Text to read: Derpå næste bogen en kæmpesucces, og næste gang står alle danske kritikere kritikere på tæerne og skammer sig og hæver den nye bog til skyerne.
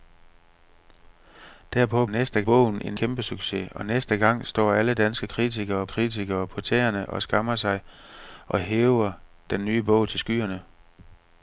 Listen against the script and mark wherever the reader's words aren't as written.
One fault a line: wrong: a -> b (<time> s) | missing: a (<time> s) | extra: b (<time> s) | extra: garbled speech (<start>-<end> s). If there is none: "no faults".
no faults